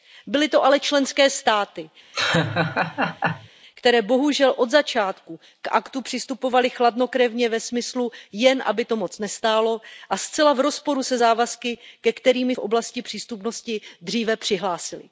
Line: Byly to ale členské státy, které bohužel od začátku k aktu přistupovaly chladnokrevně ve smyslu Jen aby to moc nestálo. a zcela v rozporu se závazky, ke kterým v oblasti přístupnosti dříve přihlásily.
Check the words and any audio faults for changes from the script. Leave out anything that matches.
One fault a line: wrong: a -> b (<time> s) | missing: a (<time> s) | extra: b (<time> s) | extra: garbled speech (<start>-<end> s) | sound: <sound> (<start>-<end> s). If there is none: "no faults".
sound: laugh (2.1-3.5 s)